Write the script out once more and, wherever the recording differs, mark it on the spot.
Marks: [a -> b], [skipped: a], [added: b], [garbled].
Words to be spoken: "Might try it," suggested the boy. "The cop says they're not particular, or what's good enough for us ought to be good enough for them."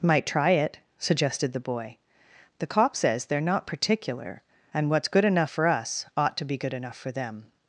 "Might try it," suggested the boy. "The cop says they're not particular, [or -> and] what's good enough for us ought to be good enough for them."